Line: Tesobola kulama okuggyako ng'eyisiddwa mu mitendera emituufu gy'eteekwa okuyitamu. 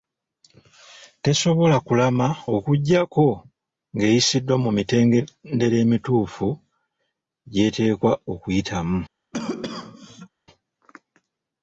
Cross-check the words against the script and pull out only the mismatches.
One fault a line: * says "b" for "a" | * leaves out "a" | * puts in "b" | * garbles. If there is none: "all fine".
all fine